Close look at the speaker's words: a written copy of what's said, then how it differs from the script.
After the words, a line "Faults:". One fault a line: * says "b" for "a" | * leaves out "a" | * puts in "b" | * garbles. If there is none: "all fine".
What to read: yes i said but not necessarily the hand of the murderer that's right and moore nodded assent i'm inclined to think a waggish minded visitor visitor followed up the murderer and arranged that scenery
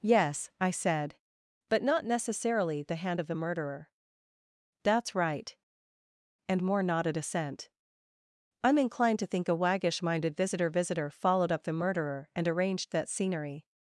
yes i said but not necessarily the hand of the murderer that's right and moore nodded assent i'm inclined to think a waggish minded visitor visitor followed up the murderer and arranged that scenery
Faults:
all fine